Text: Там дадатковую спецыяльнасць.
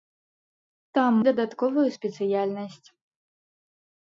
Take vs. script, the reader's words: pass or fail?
pass